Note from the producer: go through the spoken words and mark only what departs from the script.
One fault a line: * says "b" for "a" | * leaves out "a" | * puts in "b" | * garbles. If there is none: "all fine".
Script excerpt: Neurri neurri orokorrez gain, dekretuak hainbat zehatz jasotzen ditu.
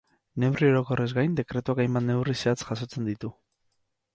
* leaves out "neurri"
* puts in "neurri"